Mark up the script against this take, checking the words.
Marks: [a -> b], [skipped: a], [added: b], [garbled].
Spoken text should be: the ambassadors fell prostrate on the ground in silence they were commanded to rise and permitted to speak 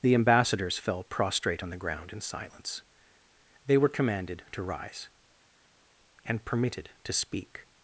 the ambassadors fell prostrate on the ground in silence they were commanded to rise and permitted to speak